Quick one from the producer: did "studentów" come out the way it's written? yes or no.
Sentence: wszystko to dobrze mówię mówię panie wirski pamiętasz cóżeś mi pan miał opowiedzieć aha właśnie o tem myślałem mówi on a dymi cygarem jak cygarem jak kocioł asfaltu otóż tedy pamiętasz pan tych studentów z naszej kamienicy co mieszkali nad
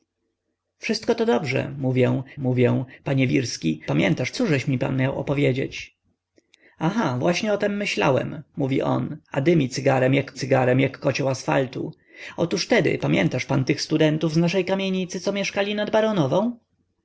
yes